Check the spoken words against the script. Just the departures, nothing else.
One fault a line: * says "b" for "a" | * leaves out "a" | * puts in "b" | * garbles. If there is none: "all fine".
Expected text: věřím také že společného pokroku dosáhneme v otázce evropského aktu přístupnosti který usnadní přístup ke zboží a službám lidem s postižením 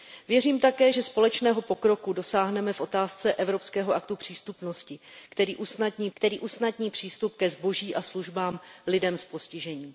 * puts in "který usnadní"